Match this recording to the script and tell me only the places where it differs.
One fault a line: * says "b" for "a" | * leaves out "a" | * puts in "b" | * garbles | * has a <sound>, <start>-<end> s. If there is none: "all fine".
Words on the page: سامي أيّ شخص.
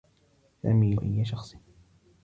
all fine